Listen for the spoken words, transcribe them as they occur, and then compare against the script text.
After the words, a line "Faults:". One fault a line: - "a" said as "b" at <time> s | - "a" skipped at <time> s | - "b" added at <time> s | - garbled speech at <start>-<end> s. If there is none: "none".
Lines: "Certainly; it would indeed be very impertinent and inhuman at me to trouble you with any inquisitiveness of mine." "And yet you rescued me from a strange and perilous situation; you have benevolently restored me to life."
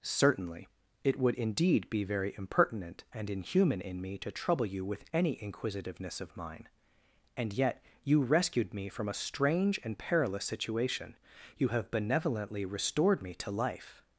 "Certainly; it would indeed be very impertinent and inhuman in me to trouble you with any inquisitiveness of mine." "And yet you rescued me from a strange and perilous situation; you have benevolently restored me to life."
Faults:
- "at" said as "in" at 3.8 s